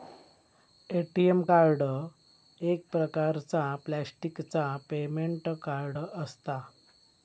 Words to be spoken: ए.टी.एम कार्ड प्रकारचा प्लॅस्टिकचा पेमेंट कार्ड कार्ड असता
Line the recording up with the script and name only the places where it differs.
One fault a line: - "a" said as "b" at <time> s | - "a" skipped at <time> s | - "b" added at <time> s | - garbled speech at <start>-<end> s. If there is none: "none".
- "एक" added at 2.6 s
- "कार्ड" skipped at 6.0 s